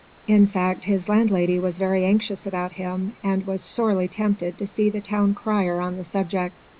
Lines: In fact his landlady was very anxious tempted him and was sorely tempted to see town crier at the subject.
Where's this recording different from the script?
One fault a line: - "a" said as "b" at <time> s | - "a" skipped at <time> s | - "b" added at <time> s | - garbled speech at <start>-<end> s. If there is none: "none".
- "tempted" said as "about" at 2.5 s
- "the" added at 4.9 s
- "at" said as "on" at 5.8 s